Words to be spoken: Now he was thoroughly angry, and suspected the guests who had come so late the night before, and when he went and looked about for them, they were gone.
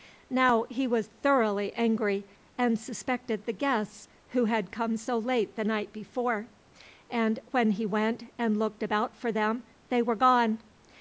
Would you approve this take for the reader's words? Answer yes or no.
yes